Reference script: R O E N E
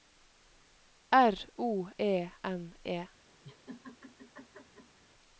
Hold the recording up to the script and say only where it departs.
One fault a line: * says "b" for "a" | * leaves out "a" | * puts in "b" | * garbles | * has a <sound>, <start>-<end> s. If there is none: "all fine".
* has a laugh, 3.4-5.0 s